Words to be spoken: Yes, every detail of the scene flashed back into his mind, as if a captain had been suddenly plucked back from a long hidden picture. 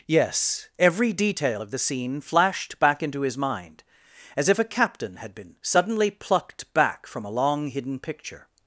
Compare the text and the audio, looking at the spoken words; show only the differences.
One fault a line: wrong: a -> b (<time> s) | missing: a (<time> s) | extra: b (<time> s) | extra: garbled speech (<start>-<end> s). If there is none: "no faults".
no faults